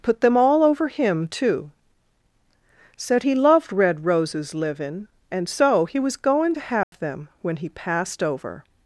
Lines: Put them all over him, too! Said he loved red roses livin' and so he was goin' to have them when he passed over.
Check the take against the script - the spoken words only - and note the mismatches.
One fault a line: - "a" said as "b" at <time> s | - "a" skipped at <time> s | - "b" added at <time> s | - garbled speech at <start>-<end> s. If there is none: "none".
none